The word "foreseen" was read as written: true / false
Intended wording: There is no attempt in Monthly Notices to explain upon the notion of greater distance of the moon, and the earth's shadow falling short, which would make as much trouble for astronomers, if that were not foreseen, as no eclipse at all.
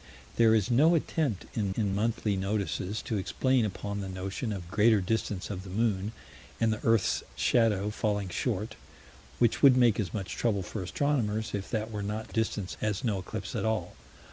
false